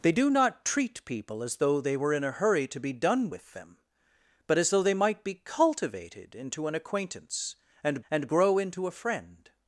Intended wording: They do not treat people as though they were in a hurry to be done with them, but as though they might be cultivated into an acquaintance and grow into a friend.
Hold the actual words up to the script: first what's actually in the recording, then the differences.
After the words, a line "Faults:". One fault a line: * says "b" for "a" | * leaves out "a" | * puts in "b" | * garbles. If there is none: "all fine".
They do not treat people as though they were in a hurry to be done with them, but as though they might be cultivated into an acquaintance and and grow into a friend.
Faults:
* puts in "and"